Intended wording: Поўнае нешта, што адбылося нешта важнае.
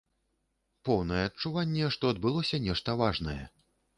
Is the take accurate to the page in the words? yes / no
no